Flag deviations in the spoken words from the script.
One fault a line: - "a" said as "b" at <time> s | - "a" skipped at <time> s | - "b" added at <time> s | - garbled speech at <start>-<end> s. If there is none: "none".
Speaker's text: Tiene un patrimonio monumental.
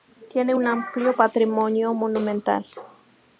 - "amplio" added at 0.7 s